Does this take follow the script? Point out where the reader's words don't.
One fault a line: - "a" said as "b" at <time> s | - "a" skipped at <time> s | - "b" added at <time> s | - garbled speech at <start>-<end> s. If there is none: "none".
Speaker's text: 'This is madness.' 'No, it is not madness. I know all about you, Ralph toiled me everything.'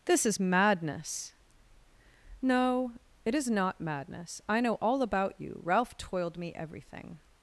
none